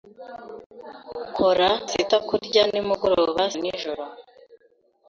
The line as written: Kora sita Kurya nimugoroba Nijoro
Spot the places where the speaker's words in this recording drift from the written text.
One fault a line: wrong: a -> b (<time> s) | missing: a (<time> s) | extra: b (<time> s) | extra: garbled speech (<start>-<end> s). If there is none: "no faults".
no faults